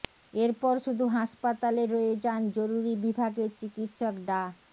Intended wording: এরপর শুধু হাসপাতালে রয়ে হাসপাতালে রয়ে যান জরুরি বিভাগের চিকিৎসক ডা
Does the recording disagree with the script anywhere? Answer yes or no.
yes